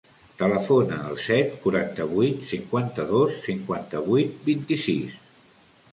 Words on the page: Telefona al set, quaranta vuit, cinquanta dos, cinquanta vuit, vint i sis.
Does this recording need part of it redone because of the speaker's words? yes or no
no